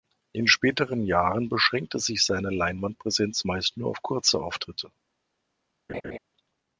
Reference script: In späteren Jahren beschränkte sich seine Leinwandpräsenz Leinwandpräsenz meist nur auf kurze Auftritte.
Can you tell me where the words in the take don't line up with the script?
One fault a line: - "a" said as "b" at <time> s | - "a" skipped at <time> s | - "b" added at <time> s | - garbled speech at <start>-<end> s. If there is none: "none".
- "Leinwandpräsenz" skipped at 3.5 s